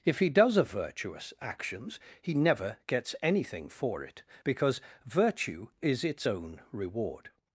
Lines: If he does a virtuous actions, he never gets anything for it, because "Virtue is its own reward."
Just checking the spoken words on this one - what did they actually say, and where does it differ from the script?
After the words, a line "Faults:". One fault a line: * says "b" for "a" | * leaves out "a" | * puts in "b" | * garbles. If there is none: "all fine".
If he does a virtuous actions, he never gets anything for it, because "Virtue is its own reward."
Faults:
all fine